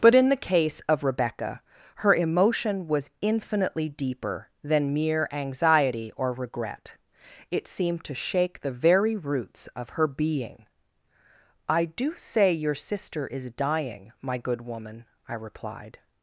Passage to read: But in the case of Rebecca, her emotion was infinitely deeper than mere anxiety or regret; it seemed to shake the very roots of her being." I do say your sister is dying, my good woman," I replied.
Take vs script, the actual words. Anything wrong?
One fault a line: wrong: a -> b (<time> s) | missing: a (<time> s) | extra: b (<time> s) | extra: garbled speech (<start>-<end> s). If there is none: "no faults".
no faults